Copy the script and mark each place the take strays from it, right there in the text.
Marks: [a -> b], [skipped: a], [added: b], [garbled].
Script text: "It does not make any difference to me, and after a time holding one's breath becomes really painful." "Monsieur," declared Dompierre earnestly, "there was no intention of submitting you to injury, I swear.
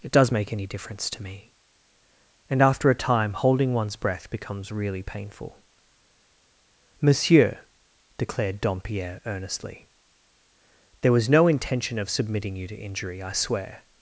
"It does [skipped: not] make any difference to me, and after a time holding one's breath becomes really painful." "Monsieur," declared Dompierre earnestly, "there was no intention of submitting you to injury, I swear.